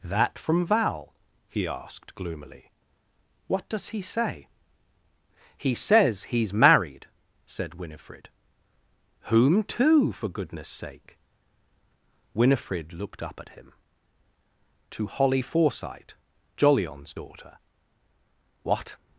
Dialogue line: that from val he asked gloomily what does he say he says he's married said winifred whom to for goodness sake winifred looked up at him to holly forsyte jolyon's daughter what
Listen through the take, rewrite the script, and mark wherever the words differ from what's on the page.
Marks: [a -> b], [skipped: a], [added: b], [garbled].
that from val he asked gloomily what does he say he says he's married said winifred whom to for goodness sake winifred looked up at him to holly forsyte jolyon's daughter what